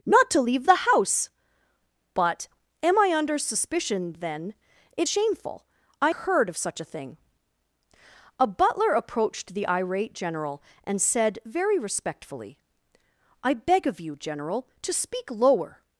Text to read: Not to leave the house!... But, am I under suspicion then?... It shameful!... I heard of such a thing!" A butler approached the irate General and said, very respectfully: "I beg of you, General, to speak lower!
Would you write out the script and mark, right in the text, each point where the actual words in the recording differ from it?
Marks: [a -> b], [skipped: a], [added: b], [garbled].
Not to leave the house!... But, am I under suspicion then?... It shameful!... I heard of such a thing!" A butler approached the irate General and said, very respectfully: "I beg of you, General, to speak lower!